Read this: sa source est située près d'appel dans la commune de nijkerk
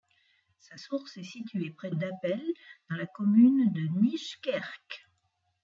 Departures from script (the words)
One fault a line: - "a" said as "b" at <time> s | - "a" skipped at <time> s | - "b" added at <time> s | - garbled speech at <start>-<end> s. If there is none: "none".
none